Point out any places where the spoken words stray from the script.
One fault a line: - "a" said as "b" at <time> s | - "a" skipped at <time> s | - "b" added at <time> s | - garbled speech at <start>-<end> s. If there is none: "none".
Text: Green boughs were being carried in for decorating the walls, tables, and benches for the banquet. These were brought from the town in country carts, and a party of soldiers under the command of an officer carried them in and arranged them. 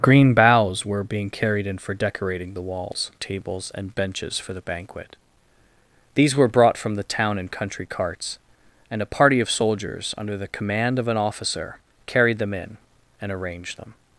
none